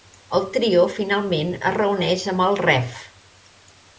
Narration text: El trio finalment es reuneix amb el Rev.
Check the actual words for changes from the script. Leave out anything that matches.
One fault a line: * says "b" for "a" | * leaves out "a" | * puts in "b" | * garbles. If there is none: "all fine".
all fine